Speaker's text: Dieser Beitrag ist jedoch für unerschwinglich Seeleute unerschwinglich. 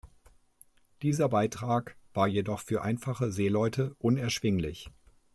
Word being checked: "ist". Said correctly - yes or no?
no